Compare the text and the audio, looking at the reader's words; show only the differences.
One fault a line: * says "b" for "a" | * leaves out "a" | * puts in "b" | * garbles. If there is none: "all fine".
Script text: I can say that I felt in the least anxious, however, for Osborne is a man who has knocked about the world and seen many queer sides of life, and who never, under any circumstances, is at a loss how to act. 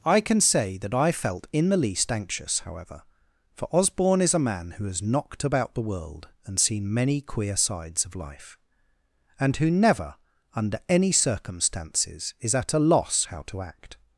all fine